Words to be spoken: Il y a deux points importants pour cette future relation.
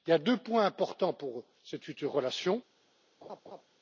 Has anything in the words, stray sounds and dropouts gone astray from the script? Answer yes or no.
yes